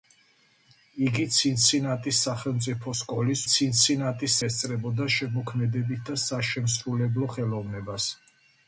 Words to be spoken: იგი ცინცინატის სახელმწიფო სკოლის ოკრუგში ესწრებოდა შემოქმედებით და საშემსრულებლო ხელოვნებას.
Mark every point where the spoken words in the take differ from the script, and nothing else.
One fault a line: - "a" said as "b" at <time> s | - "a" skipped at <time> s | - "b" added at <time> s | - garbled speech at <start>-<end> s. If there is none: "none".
- "ოკრუგში" said as "ცინცინატის" at 3.5 s